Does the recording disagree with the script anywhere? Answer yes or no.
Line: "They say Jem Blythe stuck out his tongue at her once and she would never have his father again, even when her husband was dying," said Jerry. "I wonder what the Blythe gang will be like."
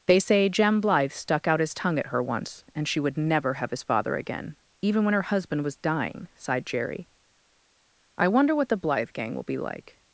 yes